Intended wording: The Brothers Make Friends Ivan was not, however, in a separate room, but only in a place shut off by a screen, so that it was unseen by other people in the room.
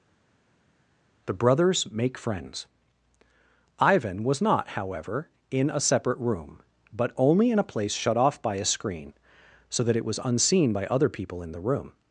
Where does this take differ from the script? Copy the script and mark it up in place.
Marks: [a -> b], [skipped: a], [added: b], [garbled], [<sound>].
The Brothers Make Friends Ivan was not, however, in a separate room, but only in a place shut off by a screen, so that it was unseen by other people in the room.